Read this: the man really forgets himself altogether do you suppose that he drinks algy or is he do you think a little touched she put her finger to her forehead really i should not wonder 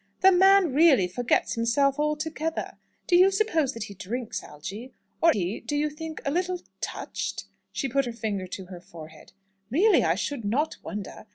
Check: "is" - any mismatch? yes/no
yes